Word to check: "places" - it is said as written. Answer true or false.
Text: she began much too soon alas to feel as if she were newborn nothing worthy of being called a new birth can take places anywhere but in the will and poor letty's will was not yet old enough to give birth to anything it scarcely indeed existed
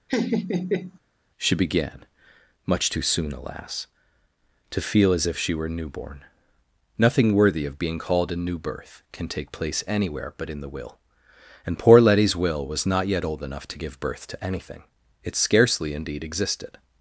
false